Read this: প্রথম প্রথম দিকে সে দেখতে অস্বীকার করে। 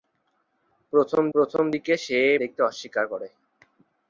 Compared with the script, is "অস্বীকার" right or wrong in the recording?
right